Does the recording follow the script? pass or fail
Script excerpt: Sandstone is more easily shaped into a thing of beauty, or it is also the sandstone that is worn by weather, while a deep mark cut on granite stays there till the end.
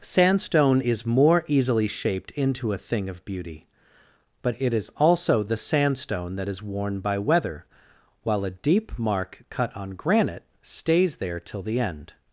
fail